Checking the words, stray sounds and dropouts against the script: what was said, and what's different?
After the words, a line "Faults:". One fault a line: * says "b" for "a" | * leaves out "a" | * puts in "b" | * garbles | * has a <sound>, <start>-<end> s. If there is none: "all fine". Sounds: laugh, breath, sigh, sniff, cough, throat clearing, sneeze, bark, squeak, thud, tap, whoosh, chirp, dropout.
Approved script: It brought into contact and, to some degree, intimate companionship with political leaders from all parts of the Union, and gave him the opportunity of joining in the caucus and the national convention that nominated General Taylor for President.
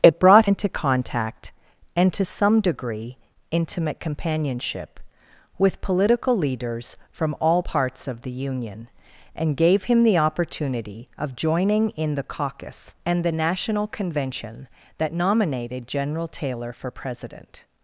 It brought into contact and, to some degree, intimate companionship with political leaders from all parts of the Union, and gave him the opportunity of joining in the caucus and the national convention that nominated General Taylor for President.
Faults:
all fine